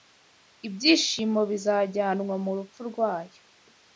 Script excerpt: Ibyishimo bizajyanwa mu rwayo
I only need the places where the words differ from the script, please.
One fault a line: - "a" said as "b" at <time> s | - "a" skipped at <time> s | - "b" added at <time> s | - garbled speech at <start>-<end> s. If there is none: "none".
- "rupfu" added at 2.6 s